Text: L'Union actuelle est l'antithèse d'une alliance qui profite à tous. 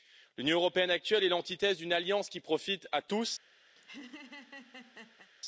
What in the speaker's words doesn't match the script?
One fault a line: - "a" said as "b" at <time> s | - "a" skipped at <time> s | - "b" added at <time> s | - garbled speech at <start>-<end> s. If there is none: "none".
- "européenne" added at 0.6 s